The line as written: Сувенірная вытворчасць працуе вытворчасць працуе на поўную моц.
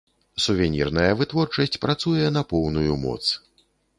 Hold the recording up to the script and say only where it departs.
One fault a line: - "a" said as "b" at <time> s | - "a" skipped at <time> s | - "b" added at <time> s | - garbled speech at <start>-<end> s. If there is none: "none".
- "вытворчасць працуе" skipped at 2.2 s